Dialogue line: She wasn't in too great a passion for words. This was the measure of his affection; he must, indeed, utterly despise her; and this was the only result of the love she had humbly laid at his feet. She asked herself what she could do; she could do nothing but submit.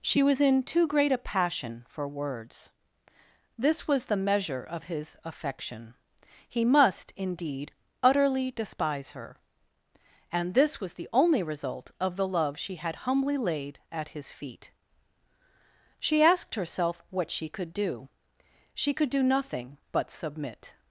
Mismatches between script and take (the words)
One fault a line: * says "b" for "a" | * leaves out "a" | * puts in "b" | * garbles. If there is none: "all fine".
* says "was" for "wasn't"